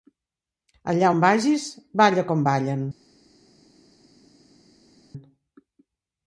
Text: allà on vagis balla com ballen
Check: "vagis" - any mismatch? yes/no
no